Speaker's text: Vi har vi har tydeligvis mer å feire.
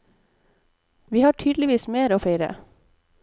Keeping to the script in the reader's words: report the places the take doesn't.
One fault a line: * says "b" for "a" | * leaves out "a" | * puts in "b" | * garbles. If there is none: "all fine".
* leaves out "vi har"